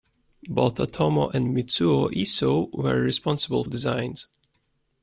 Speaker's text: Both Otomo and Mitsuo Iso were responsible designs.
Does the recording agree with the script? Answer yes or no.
yes